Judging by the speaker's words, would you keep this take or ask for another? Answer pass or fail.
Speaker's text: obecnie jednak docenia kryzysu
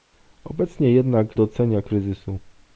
pass